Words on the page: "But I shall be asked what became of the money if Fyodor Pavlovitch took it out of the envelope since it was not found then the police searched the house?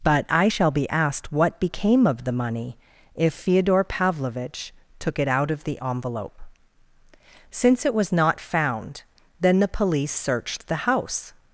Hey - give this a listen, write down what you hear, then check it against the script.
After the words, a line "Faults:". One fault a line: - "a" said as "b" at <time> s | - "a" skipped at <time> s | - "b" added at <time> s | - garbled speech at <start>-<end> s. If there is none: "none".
"But I shall be asked what became of the money if Fyodor Pavlovitch took it out of the envelope since it was not found then the police searched the house?
Faults:
none